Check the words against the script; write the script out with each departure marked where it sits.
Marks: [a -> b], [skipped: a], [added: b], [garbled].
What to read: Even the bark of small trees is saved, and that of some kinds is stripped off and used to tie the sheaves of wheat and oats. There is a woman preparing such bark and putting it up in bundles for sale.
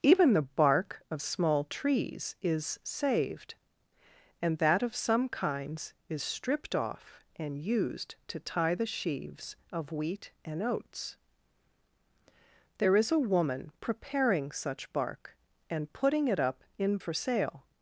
Even the bark of small trees is saved, and that of some kinds is stripped off and used to tie the sheaves of wheat and oats. There is a woman preparing such bark and putting it up in [skipped: bundles] for sale.